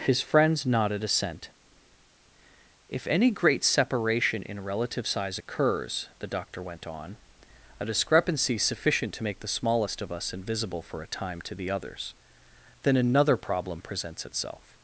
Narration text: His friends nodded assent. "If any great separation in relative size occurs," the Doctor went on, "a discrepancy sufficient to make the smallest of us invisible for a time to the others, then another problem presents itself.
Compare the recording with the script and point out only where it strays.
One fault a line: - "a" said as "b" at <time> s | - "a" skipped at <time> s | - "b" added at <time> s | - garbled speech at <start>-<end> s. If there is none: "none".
none